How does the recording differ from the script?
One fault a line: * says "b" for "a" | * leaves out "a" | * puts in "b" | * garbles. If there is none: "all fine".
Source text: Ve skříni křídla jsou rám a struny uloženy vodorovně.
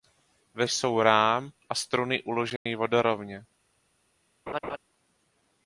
* leaves out "skříni křídla"